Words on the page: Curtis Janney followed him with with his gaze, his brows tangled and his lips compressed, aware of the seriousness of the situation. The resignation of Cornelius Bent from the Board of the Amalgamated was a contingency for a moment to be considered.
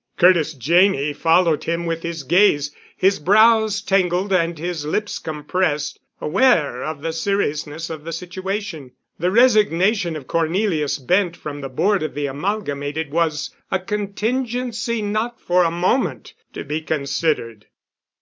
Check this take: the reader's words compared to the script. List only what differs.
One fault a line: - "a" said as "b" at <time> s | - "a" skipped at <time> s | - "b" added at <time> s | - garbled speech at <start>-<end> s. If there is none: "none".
- "with" skipped at 2.0 s
- "not" added at 15.0 s